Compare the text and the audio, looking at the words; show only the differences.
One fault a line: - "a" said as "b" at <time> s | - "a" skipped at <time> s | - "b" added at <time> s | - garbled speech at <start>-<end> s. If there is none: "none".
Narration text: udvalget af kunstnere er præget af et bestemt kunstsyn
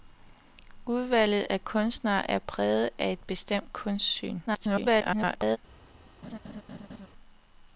- garbled speech at 4.5-5.6 s